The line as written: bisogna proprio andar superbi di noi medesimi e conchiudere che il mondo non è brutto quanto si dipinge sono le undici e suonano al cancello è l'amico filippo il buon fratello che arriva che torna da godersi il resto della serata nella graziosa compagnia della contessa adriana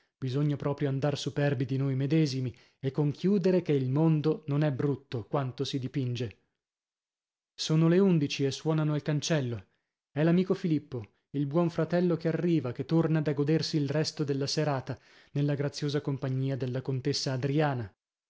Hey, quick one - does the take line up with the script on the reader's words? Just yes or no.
yes